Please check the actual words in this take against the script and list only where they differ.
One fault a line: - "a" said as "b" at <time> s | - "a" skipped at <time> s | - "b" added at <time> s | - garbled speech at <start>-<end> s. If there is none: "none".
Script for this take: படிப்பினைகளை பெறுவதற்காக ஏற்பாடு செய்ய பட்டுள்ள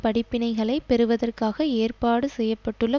none